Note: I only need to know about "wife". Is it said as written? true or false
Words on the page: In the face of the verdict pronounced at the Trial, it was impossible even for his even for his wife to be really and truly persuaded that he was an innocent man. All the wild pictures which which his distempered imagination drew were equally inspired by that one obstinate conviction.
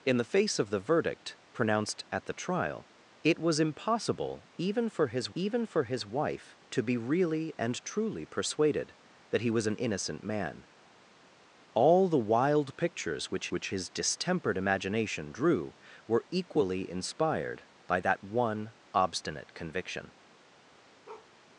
true